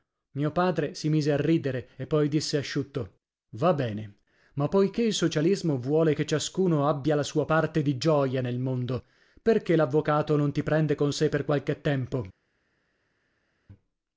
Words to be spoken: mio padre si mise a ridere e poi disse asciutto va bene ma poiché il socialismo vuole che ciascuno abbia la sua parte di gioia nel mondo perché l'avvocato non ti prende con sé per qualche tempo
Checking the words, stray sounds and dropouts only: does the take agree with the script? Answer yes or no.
yes